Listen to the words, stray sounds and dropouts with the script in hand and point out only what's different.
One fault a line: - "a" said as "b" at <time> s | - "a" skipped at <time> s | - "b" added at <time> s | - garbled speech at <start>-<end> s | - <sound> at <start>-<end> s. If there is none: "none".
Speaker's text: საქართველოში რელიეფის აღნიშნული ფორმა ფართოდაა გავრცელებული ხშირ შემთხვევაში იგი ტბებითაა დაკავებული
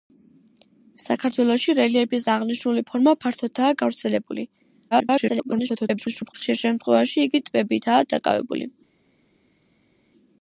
- garbled speech at 4.9-6.3 s